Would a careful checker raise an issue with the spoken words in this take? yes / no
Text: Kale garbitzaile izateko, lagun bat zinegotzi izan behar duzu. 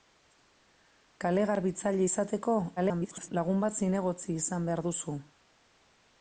yes